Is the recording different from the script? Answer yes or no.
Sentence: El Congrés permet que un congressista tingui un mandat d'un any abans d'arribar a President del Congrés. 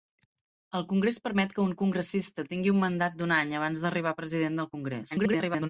yes